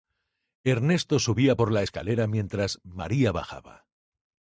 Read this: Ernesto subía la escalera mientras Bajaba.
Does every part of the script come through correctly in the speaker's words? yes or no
no